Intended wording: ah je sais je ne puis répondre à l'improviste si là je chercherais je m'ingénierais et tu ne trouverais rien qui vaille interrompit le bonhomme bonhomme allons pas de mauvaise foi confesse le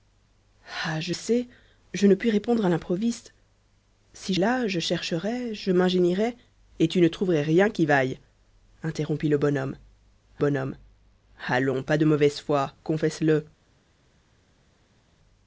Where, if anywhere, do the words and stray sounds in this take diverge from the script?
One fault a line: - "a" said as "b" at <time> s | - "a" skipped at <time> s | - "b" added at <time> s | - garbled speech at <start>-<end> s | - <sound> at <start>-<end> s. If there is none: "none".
none